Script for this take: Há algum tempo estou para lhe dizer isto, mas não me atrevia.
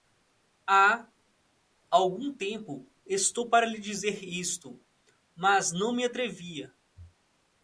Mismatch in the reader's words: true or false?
false